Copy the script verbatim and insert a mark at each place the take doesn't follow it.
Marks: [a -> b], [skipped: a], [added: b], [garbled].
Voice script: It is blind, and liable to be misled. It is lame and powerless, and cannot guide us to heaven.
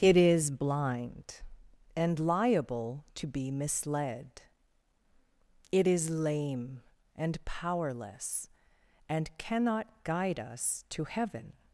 It is blind, and liable to be misled. It is lame and powerless, and cannot guide us to heaven.